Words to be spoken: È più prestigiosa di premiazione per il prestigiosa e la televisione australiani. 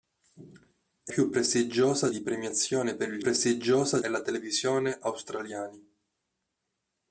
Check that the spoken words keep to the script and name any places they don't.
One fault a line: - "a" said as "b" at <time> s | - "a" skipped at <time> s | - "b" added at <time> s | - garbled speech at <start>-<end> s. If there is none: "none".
none